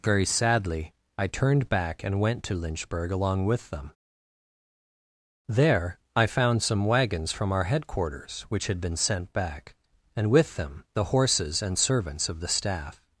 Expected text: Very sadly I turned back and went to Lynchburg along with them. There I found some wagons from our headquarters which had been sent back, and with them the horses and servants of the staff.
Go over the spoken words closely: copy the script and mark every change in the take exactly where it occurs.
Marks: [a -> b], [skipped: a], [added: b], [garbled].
Very sadly I turned back and went to Lynchburg along with them. There I found some wagons from our headquarters which had been sent back, and with them the horses and servants of the staff.